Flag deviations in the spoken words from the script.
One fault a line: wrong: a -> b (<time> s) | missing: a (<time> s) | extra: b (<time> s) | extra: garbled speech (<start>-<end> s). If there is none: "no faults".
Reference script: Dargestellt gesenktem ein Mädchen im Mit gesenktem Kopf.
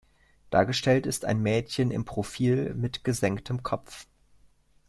wrong: gesenktem -> ist (1.1 s)
extra: Profil (2.0 s)